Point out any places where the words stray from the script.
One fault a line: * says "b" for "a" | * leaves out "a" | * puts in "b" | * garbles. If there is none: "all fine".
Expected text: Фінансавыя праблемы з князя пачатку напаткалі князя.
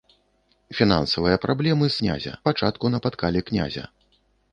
all fine